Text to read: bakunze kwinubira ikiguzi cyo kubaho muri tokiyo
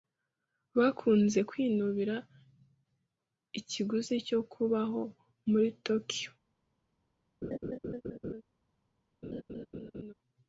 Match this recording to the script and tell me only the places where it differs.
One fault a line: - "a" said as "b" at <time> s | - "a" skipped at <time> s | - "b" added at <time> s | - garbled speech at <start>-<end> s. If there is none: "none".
none